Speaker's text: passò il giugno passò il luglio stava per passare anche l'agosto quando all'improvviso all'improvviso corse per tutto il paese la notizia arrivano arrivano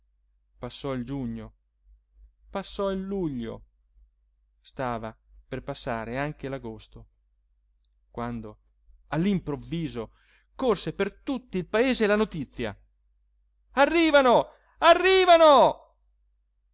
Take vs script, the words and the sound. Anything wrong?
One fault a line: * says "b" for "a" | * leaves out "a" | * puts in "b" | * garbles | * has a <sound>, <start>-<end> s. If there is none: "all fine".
* leaves out "all'improvviso"